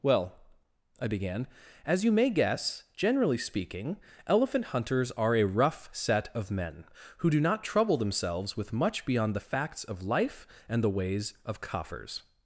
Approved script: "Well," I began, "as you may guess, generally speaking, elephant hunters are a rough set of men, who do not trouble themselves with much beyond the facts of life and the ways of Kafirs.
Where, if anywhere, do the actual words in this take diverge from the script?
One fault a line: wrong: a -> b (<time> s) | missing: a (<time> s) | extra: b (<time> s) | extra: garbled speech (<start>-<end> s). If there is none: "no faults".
no faults